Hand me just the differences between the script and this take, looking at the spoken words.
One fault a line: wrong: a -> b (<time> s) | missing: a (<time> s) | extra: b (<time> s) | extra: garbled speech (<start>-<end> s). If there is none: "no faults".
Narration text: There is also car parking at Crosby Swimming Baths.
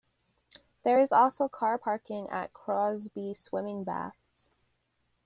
no faults